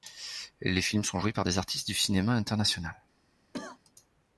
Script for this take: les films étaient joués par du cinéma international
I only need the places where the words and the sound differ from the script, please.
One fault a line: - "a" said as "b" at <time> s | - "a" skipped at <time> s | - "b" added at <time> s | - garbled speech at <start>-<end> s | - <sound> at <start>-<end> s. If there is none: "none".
- "étaient" said as "sont" at 1.0 s
- "des artistes" added at 1.4 s
- cough at 3.5-3.8 s